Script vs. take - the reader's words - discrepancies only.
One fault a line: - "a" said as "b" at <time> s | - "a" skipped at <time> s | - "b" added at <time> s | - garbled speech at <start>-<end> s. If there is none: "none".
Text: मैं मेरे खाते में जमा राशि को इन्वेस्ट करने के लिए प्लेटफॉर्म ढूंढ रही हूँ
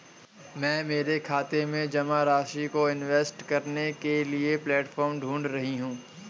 none